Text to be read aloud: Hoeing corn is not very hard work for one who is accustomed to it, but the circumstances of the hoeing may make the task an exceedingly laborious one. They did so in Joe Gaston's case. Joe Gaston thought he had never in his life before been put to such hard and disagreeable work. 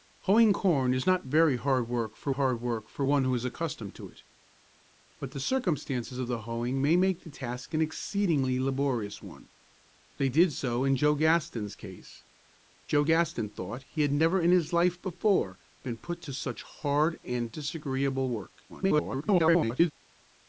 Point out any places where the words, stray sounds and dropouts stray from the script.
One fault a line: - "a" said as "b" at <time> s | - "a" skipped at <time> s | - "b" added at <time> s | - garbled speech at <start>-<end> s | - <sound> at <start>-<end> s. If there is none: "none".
- "hard work for" added at 2.3 s
- garbled speech at 18.7-19.9 s